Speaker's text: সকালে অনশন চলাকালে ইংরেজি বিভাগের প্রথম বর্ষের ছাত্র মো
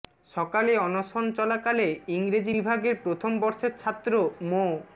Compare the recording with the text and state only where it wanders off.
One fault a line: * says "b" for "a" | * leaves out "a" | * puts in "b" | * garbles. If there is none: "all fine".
all fine